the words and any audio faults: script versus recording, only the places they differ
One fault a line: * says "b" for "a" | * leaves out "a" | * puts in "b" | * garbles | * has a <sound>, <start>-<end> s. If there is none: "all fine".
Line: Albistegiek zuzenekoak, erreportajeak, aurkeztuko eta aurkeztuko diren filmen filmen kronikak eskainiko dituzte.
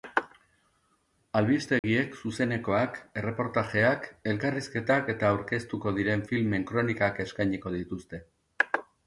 * has a dropout, 1.8-1.8 s
* says "elkarrizketak" for "aurkeztuko"
* leaves out "filmen"